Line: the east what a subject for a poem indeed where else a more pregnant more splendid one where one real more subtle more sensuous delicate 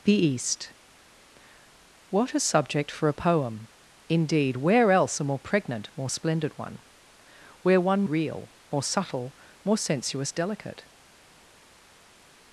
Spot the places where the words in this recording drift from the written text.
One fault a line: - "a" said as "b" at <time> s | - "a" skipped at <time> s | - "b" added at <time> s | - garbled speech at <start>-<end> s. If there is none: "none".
none